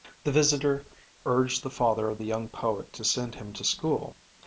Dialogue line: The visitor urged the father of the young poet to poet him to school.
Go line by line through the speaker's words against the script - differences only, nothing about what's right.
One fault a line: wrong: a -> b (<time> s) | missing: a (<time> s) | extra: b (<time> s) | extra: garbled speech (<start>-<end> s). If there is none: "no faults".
wrong: poet -> send (3.0 s)